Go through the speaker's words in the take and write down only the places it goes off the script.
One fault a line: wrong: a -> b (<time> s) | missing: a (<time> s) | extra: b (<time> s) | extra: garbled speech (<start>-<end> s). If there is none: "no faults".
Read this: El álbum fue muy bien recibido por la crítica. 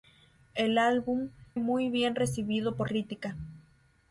missing: fue (1.3 s)
missing: la (2.9 s)